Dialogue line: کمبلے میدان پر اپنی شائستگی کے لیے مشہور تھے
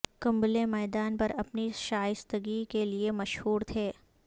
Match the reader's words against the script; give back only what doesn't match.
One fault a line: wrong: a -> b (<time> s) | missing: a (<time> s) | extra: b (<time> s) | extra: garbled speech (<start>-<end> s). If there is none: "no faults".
no faults